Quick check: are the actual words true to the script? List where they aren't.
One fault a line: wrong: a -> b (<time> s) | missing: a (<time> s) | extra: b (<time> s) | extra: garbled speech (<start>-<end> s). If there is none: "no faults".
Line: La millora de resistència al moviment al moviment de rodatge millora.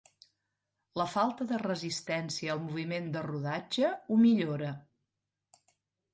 wrong: millora -> falta (1.1 s)
missing: al moviment (3.1 s)
extra: ho (3.9 s)